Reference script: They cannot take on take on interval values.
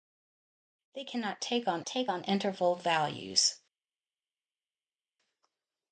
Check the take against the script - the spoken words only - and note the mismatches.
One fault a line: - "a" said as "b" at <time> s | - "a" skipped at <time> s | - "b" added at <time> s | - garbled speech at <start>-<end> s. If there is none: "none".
none